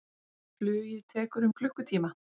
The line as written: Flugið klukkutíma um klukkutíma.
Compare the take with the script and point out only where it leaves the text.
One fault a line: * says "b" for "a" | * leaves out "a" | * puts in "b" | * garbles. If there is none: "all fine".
* says "tekur" for "klukkutíma"